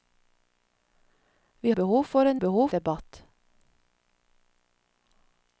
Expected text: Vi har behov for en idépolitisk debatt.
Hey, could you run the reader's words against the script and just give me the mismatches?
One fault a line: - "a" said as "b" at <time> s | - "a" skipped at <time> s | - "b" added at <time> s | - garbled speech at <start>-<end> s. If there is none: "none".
- "har" skipped at 1.7 s
- "idépolitisk" said as "behov" at 2.4 s